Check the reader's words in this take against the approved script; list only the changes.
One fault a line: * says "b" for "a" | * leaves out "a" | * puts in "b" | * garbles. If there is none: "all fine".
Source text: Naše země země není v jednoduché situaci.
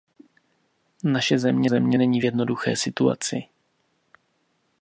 all fine